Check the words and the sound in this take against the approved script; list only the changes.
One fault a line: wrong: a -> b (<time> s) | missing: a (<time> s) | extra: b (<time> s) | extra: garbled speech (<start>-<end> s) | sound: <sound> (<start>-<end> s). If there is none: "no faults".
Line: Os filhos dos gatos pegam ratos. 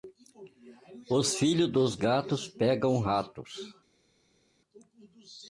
no faults